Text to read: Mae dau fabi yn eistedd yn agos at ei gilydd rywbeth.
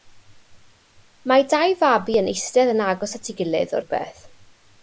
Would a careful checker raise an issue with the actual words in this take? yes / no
no